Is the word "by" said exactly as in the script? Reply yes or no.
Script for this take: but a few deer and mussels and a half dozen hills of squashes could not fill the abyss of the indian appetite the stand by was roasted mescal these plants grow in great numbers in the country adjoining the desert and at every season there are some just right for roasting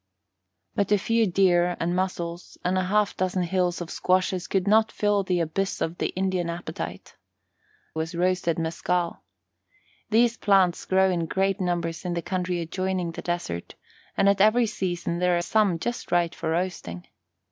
no